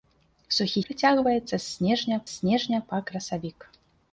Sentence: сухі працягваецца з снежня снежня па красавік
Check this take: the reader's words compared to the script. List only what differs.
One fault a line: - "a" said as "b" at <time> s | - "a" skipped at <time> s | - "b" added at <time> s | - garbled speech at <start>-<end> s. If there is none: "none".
none